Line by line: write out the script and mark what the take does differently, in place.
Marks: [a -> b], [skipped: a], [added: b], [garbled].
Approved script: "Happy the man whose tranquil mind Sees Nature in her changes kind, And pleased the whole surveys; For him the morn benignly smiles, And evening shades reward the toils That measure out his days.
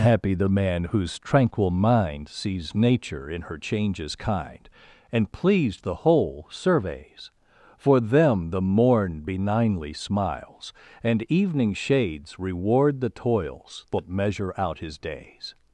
"Happy the man whose tranquil mind Sees Nature in her changes kind, And pleased the whole surveys; For [him -> them] the morn benignly smiles, And evening shades reward the toils That measure out his days.